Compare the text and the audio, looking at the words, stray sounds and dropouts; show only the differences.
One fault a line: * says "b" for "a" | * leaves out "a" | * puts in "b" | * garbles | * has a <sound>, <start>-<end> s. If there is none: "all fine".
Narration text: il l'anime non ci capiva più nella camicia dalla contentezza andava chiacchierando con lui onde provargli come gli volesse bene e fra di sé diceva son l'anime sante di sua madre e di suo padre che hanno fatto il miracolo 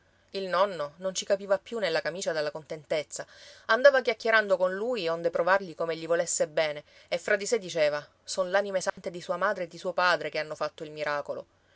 * says "nonno" for "l'anime"
* has a dropout, 8.9-9.0 s